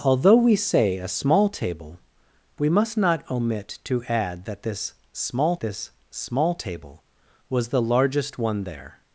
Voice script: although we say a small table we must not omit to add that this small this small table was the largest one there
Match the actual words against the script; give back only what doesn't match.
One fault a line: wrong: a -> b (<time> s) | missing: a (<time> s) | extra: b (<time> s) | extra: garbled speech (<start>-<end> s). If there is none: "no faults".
no faults